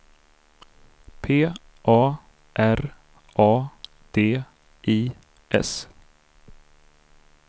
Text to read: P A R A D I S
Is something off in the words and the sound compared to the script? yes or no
no